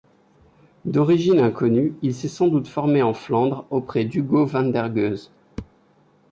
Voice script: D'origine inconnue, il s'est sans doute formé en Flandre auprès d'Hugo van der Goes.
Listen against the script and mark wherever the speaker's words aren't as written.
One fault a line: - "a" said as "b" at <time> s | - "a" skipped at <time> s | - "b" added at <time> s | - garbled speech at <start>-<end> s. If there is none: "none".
none